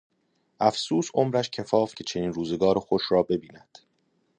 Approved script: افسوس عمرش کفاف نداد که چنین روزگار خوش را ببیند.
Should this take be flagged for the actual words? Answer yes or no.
yes